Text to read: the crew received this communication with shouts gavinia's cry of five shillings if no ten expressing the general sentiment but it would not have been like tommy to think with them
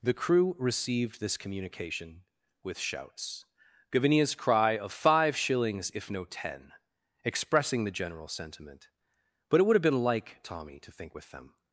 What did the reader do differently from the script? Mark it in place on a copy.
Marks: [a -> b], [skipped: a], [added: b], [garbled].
the crew received this communication with shouts gavinia's cry of five shillings if no ten expressing the general sentiment but it would [skipped: not] have been like tommy to think with them